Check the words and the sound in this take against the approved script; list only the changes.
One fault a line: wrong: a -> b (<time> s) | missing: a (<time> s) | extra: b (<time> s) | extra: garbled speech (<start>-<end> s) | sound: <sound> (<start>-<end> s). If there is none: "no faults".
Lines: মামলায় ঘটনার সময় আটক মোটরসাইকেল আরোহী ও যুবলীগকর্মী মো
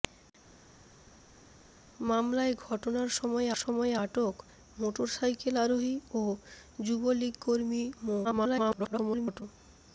extra: সময় (3.6 s)
extra: garbled speech (8.2-9.4 s)